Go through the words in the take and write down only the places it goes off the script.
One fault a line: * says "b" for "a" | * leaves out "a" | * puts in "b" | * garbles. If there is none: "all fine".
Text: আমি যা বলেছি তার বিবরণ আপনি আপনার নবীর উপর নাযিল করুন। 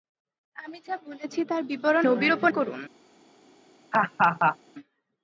* leaves out "আপনি আপনার"
* leaves out "নাযিল"